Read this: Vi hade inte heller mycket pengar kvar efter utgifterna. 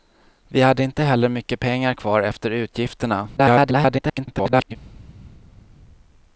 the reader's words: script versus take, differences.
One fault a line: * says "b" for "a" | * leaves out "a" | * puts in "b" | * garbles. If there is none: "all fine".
* garbles